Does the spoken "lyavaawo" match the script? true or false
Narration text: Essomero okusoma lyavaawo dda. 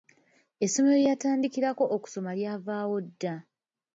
true